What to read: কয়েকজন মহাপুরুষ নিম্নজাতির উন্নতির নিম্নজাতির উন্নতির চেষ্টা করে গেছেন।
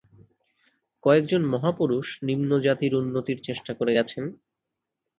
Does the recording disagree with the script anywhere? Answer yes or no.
yes